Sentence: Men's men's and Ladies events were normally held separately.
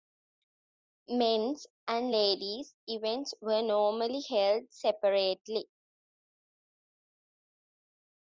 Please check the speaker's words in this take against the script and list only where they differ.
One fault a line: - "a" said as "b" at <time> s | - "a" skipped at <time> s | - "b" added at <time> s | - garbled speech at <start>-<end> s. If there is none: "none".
- "men's" skipped at 1.7 s